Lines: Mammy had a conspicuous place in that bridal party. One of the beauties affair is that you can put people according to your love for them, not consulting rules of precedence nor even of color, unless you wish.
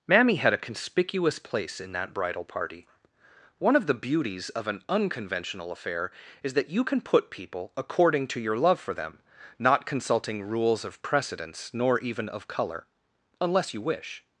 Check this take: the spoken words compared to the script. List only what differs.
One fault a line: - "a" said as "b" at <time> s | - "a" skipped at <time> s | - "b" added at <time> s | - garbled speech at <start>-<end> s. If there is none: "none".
- "of an unconventional" added at 4.5 s